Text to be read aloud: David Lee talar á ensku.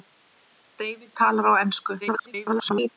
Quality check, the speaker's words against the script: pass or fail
fail